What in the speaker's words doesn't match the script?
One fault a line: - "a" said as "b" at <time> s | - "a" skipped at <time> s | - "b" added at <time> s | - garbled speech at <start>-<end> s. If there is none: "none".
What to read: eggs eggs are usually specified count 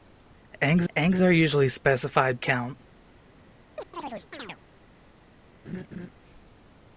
none